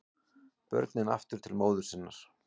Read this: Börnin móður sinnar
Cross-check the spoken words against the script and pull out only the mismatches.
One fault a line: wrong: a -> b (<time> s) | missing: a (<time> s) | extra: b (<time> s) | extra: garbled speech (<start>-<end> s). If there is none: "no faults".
extra: aftur til (1.2 s)